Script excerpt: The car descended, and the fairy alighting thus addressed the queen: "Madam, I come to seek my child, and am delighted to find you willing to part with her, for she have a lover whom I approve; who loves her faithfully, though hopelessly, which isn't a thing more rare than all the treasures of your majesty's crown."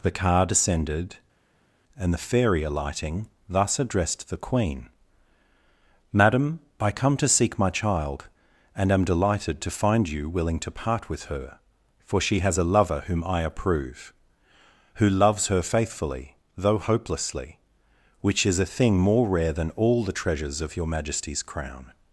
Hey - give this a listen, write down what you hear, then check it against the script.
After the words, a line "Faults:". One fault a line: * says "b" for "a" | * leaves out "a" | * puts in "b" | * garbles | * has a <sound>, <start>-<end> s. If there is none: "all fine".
The car descended, and the fairy alighting thus addressed the queen: "Madam, I come to seek my child, and am delighted to find you willing to part with her, for she has a lover whom I approve; who loves her faithfully, though hopelessly, which is a thing more rare than all the treasures of your majesty's crown."
Faults:
* says "has" for "have"
* says "is" for "isn't"